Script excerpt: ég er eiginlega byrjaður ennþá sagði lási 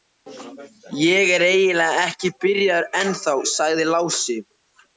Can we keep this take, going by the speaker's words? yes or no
no